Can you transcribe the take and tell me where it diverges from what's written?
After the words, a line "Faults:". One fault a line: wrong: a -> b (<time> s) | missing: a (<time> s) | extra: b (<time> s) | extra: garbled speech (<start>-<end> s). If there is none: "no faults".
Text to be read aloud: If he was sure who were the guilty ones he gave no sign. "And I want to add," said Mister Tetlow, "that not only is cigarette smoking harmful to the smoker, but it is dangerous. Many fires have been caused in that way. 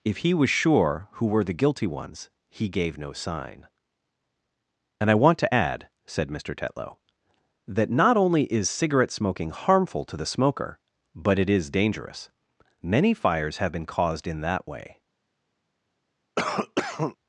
If he was sure who were the guilty ones he gave no sign. "And I want to add," said Mister Tetlow, "that not only is cigarette smoking harmful to the smoker, but it is dangerous. Many fires have been caused in that way.
Faults:
no faults